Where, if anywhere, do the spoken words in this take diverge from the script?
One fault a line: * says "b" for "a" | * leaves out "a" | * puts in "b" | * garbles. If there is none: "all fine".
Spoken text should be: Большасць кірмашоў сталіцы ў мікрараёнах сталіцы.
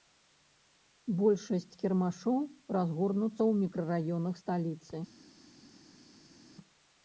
* says "разгорнуцца" for "сталіцы"